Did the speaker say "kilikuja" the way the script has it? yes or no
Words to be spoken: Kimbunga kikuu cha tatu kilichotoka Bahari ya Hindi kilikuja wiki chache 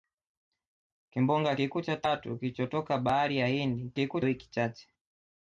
no